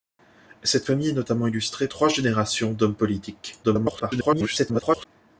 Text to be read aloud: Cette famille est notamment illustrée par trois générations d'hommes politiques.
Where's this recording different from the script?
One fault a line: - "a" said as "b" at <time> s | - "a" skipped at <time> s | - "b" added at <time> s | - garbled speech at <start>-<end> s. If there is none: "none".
- "par" skipped at 1.9 s
- garbled speech at 3.6-5.1 s